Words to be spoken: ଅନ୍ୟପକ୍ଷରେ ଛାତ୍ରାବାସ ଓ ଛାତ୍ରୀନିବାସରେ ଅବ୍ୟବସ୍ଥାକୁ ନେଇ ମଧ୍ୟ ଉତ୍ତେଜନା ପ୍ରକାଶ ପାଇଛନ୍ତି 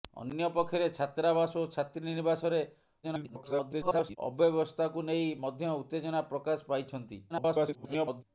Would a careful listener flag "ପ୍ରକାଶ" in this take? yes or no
no